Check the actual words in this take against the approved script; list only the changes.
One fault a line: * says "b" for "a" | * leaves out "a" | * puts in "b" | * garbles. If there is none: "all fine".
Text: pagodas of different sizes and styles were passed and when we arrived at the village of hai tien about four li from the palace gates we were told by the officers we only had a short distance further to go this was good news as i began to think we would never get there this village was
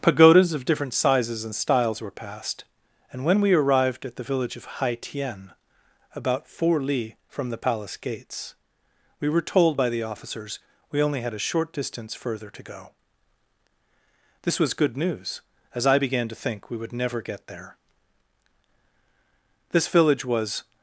all fine